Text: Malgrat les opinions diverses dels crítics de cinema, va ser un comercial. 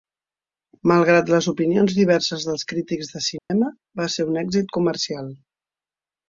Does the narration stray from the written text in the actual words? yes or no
yes